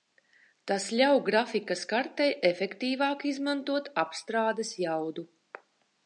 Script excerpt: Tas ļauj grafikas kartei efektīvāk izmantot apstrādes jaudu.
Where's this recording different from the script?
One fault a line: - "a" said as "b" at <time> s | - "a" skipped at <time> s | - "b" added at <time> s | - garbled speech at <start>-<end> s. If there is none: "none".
none